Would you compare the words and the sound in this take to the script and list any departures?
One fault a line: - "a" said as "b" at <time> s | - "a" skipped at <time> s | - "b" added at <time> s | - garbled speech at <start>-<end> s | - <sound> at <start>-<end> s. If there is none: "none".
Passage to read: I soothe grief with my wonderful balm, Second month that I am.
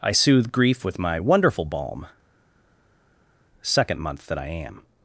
none